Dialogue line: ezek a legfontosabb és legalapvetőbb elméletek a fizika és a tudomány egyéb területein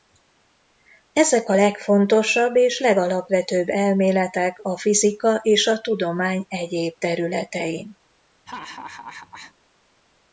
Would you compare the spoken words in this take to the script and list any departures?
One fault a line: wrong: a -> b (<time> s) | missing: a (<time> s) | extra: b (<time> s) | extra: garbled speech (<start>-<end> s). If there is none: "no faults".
no faults